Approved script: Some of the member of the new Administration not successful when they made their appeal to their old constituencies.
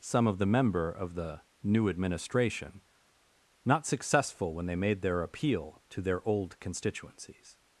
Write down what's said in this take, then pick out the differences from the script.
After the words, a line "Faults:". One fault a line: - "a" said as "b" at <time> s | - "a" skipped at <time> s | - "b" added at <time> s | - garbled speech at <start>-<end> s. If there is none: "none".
Some of the member of the new Administration not successful when they made their appeal to their old constituencies.
Faults:
none